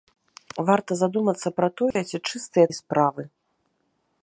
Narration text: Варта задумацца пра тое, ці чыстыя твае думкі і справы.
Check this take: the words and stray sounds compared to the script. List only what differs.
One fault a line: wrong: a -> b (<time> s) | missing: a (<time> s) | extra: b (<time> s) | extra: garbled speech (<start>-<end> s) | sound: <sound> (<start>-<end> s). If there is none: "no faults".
sound: dropout (1.9-2.0 s)
missing: твае думкі (2.7 s)